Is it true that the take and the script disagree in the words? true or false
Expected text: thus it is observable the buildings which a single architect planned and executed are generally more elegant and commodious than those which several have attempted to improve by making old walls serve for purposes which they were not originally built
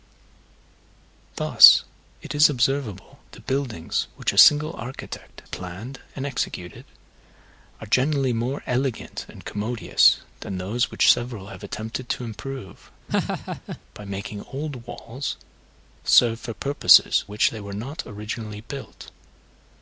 false